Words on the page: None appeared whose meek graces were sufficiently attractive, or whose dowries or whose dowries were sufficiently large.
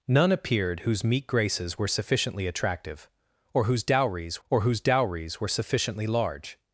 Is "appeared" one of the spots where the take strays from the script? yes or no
no